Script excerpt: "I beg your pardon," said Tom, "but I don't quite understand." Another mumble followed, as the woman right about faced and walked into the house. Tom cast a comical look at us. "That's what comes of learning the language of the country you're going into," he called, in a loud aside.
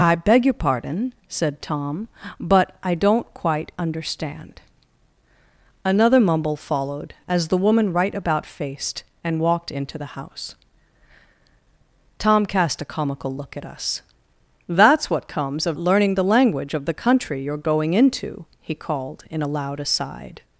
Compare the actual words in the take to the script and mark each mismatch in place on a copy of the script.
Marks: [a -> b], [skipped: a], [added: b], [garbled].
"I beg your pardon," said Tom, "but I don't quite understand." Another mumble followed, as the woman right about faced and walked into the house. Tom cast a comical look at us. "That's what comes of learning the language of the country you're going into," he called, in a loud aside.